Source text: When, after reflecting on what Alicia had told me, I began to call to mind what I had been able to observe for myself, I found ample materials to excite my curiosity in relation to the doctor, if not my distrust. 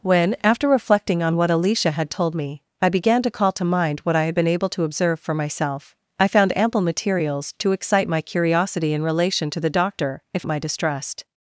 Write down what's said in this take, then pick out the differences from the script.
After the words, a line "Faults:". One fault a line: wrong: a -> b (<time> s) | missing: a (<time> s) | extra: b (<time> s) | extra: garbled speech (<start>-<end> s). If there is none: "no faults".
When, after reflecting on what Alicia had told me, I began to call to mind what I had been able to observe for myself, I found ample materials to excite my curiosity in relation to the doctor, if my distrust.
Faults:
missing: not (10.5 s)